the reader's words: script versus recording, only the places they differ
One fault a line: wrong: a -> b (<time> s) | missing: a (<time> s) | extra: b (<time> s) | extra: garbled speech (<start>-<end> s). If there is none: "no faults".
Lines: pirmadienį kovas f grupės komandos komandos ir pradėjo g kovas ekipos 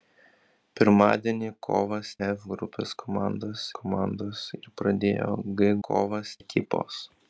no faults